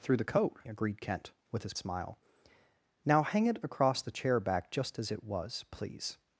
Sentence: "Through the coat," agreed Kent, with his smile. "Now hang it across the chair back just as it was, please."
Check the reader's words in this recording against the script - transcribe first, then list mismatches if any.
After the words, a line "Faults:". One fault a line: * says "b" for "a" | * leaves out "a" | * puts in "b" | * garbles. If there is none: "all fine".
"Through the coat," agreed Kent, with his smile. "Now hang it across the chair back just as it was, please."
Faults:
all fine